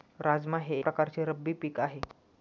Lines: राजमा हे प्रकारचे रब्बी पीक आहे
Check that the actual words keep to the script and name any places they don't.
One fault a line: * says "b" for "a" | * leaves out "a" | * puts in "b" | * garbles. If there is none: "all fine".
all fine